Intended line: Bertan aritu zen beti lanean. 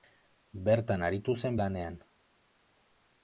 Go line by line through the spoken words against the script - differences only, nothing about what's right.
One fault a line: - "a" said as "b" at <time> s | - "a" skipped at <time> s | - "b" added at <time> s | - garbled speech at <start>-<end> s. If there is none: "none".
- "beti" skipped at 1.6 s